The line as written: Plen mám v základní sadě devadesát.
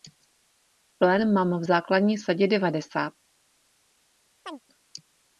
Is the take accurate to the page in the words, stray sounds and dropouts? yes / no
no